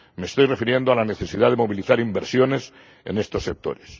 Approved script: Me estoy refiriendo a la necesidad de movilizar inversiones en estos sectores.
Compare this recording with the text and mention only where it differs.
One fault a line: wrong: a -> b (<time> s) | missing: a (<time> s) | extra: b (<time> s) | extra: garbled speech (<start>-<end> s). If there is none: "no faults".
no faults